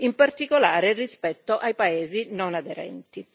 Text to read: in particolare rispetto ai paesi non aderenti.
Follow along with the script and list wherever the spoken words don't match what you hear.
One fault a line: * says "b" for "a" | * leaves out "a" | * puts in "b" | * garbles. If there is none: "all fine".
all fine